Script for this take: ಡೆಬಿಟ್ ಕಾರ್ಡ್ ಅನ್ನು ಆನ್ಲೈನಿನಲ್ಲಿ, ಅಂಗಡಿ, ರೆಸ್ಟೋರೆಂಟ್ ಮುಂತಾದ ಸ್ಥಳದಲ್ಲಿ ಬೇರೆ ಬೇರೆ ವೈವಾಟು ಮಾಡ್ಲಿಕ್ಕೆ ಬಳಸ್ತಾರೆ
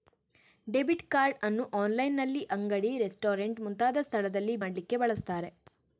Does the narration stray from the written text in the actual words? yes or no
yes